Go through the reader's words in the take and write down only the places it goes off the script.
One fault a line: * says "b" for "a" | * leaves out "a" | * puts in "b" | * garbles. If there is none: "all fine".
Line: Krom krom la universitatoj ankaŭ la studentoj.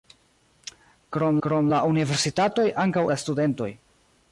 all fine